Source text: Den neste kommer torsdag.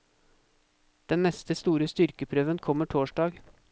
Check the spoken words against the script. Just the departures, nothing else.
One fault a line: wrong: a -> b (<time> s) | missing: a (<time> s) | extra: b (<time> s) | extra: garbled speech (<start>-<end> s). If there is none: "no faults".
extra: store styrkeprøven (1.6 s)